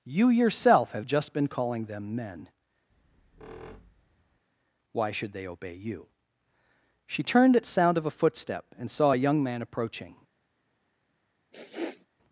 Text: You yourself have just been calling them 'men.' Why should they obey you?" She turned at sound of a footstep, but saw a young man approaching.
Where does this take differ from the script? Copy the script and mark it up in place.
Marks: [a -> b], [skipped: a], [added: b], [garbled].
You yourself have just been calling them 'men.' Why should they obey you?" She turned at sound of a footstep, [but -> and] saw a young man approaching.